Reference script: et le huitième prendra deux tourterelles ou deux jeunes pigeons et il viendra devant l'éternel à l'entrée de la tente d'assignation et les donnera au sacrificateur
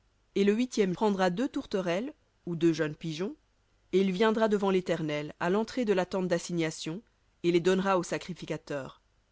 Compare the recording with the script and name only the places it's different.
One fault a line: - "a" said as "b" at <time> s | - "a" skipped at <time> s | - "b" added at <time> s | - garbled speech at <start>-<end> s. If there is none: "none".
none